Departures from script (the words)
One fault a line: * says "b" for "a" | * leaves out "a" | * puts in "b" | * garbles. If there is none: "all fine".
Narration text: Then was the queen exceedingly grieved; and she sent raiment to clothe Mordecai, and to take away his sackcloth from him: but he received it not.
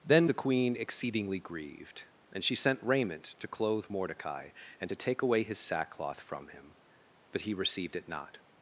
* leaves out "was"